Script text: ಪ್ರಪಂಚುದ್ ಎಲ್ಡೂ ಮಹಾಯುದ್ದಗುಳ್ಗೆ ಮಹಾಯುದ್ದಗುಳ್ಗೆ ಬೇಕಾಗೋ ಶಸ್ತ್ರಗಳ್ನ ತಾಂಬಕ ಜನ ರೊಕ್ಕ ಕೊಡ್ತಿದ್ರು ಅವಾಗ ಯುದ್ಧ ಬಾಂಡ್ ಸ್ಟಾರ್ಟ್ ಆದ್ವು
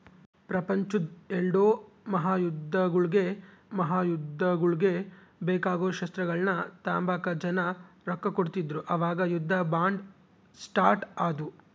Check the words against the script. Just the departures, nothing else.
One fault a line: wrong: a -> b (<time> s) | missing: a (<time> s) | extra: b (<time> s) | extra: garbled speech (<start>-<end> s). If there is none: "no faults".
no faults